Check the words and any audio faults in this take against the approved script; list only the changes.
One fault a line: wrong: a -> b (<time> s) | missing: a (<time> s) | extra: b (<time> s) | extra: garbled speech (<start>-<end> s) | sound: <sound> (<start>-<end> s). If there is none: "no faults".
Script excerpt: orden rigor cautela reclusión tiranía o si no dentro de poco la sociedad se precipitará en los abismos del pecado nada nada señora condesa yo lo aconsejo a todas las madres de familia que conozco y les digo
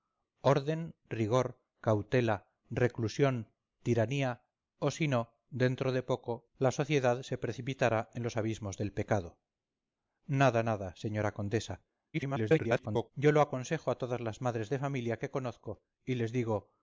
extra: garbled speech (12.1-13.1 s)